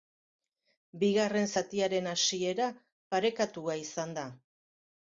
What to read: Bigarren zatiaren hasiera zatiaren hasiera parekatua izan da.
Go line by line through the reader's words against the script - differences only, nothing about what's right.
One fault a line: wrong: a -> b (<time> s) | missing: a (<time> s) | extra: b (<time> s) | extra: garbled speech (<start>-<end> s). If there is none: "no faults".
missing: zatiaren hasiera (2.7 s)